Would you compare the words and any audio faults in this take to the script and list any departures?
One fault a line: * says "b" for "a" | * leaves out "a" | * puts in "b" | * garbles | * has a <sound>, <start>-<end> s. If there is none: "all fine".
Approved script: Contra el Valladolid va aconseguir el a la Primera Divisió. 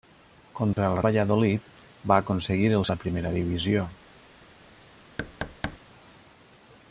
* has a dropout, 0.7-0.8 s
* has a thud, 5.2-5.8 s